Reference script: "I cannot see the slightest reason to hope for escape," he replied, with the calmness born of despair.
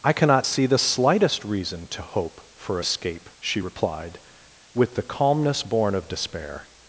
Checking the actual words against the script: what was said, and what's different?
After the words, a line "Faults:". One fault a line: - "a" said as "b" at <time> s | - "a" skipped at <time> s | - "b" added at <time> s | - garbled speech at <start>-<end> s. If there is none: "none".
"I cannot see the slightest reason to hope for escape," she replied, with the calmness born of despair.
Faults:
- "he" said as "she" at 3.4 s